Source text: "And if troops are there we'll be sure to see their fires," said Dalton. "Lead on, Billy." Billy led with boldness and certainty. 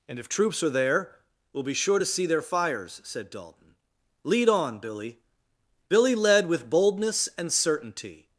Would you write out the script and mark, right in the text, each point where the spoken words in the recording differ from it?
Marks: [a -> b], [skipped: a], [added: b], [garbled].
"And if troops are there we'll be sure to see their fires," said Dalton. "Lead on, Billy." Billy led with boldness and certainty.